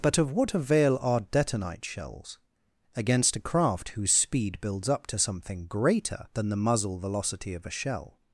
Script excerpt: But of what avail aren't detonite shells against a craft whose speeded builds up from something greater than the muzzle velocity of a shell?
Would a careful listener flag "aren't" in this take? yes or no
yes